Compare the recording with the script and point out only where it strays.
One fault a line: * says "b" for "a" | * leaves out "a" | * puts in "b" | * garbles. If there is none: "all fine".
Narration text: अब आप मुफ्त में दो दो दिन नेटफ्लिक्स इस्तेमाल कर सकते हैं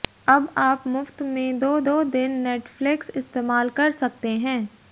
all fine